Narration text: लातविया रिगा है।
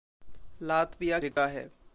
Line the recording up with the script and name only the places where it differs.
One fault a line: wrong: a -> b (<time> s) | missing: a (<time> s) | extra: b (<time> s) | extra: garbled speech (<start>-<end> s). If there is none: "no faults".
no faults